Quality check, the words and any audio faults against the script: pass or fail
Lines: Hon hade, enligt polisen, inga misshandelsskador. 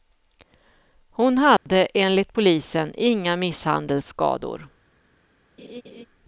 fail